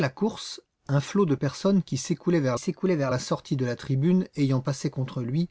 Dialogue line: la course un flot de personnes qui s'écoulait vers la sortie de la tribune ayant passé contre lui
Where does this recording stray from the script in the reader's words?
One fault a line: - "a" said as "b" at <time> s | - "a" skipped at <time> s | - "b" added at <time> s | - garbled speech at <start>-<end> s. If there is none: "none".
- "s'écoulait vers" added at 2.6 s